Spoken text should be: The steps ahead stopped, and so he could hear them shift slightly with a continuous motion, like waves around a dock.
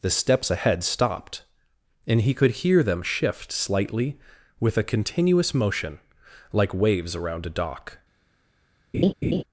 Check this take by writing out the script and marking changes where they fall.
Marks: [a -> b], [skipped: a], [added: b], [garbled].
The steps ahead stopped, and [skipped: so] he could hear them shift slightly with a continuous motion, like waves around a dock.